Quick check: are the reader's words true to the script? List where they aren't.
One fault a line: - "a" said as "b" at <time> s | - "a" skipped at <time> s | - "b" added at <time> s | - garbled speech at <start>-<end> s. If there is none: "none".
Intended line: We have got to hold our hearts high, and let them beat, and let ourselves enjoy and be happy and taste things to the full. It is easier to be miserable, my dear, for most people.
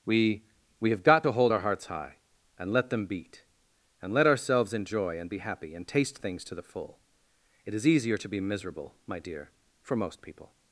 - "we" added at 0.8 s